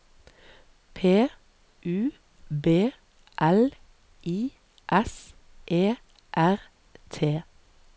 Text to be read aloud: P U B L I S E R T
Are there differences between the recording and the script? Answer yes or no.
no